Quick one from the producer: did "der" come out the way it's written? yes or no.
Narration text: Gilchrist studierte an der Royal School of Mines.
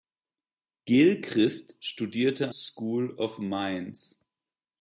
no